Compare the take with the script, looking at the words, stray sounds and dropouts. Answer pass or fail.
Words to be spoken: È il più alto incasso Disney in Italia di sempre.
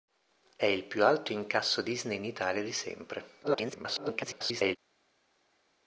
fail